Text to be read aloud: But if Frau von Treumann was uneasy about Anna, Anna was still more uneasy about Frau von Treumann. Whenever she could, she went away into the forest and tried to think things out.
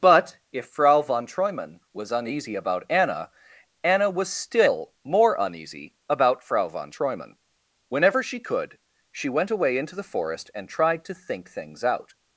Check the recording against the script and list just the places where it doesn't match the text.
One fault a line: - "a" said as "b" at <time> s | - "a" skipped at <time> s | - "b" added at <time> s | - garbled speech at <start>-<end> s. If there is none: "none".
none